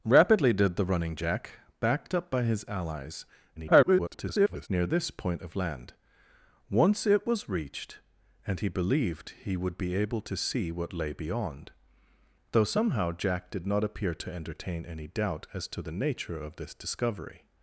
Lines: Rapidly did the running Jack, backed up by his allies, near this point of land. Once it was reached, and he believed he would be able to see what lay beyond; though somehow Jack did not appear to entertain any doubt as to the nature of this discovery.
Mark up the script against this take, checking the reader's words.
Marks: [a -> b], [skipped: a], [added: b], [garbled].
Rapidly did the running Jack, backed up by his allies, [garbled] near this point of land. Once it was reached, and he believed he would be able to see what lay beyond; though somehow Jack did not appear to entertain any doubt as to the nature of this discovery.